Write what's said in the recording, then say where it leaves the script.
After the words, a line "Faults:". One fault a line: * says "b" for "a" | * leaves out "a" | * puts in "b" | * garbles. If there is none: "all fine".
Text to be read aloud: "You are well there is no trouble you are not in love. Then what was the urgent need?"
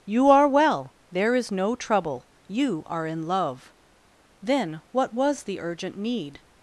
"You are well there is no trouble you are in love. Then what was the urgent need?"
Faults:
* leaves out "not"